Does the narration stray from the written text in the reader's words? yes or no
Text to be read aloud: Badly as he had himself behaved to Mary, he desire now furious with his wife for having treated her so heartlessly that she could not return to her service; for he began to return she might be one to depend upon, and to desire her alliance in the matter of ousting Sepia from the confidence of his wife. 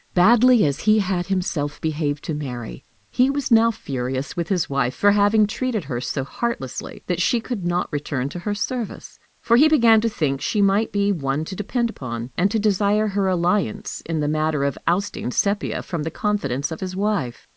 yes